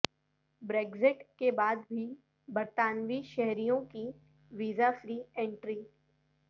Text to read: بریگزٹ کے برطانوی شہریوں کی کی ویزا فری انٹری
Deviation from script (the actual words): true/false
true